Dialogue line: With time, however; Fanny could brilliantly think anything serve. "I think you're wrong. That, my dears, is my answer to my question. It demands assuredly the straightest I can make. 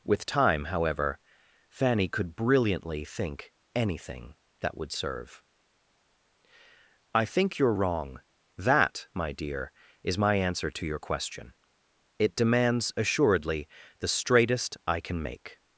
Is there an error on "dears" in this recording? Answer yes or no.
yes